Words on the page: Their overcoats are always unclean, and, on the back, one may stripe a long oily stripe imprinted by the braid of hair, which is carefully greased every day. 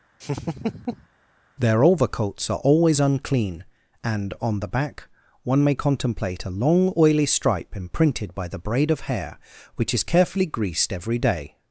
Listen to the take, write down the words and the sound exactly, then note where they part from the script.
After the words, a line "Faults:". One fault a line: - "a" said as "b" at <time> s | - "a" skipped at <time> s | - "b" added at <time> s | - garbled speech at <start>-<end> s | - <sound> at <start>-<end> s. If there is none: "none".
Their overcoats are always unclean, and, on the back, one may contemplate a long oily stripe imprinted by the braid of hair, which is carefully greased every day.
Faults:
- laugh at 0.2-1.1 s
- "stripe" said as "contemplate" at 5.7 s